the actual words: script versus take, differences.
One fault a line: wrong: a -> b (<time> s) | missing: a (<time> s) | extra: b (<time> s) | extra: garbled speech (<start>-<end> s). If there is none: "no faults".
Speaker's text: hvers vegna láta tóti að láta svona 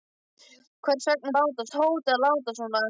no faults